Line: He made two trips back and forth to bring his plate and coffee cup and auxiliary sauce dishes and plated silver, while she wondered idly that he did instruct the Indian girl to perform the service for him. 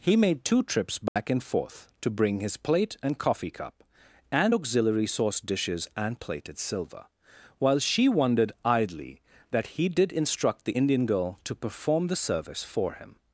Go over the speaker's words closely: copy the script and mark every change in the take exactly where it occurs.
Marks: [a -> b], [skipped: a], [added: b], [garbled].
He made two trips back and forth to bring his plate and coffee cup and auxiliary sauce dishes and plated silver, while she wondered idly that he did instruct the Indian girl to perform the service for him.